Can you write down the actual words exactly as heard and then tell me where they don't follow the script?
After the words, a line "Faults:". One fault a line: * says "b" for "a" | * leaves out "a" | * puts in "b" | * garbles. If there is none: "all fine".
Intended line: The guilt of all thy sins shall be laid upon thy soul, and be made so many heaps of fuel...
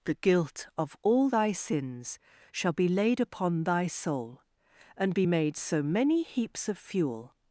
The guilt of all thy sins shall be laid upon thy soul, and be made so many heaps of fuel...
Faults:
all fine